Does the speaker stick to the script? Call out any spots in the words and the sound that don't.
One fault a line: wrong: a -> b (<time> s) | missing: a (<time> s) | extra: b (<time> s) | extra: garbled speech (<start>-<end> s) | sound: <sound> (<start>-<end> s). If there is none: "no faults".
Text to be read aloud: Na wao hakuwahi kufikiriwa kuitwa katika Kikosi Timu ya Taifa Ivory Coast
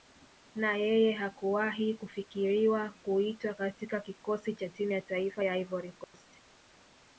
wrong: wao -> yeye (0.8 s)
extra: cha (4.5 s)
extra: ya (5.4 s)
sound: dropout (6.0-6.1 s)